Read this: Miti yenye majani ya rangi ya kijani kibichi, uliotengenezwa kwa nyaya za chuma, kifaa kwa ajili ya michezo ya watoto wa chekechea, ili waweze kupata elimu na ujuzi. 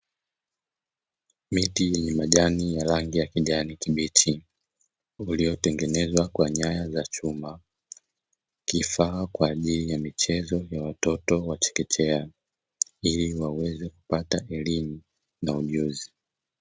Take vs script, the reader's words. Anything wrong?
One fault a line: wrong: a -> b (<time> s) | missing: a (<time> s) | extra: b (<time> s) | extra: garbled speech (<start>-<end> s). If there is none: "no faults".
no faults